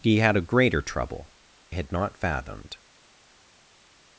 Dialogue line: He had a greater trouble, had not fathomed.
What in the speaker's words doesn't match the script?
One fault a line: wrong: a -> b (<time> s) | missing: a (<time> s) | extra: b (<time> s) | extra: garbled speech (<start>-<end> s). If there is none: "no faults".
no faults